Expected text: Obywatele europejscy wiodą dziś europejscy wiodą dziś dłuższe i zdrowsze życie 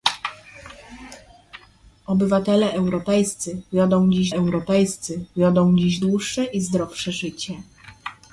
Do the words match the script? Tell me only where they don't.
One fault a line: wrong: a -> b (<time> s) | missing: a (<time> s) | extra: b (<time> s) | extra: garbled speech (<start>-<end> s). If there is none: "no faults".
no faults